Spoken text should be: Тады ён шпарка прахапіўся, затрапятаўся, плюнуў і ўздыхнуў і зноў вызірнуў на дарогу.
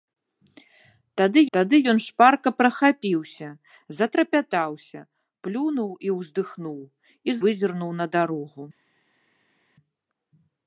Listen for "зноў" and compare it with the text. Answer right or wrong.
wrong